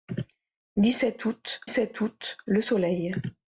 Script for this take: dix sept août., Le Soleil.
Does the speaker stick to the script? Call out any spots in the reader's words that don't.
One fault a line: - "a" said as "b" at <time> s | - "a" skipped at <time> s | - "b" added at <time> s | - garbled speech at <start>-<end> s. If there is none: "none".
- "sept août" added at 1.7 s